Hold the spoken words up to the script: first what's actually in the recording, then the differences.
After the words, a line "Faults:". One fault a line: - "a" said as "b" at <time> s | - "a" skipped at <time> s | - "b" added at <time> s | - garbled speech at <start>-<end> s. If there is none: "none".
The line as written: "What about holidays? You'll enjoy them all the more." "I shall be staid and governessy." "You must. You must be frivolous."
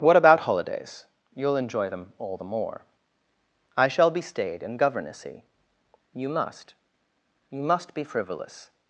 "What about holidays? You'll enjoy them all the more." "I shall be staid and governessy." "You must. You must be frivolous."
Faults:
none